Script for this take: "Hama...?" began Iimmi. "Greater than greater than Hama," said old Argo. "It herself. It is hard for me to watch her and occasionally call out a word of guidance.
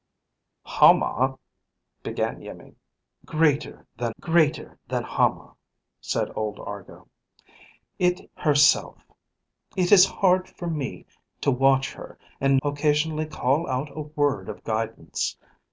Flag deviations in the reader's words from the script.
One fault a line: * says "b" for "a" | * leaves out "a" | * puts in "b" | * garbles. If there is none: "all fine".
all fine